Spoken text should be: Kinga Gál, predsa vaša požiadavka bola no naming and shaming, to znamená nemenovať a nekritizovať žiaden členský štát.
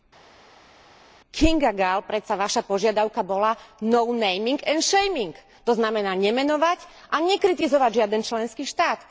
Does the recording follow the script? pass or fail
pass